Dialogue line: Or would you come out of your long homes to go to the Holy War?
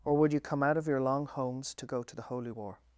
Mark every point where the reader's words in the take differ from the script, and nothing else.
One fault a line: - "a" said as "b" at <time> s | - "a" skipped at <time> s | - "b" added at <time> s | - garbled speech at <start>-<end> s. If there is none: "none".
none